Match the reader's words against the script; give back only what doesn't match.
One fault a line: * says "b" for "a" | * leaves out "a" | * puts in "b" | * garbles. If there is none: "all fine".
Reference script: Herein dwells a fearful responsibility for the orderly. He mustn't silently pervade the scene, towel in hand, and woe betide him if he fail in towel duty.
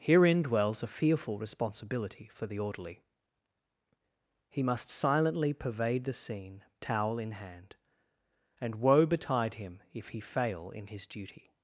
* says "must" for "mustn't"
* says "his" for "towel"